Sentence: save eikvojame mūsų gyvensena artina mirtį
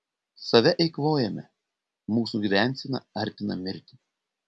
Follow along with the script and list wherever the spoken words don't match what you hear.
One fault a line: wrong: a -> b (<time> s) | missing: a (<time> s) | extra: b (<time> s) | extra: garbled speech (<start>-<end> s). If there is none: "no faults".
no faults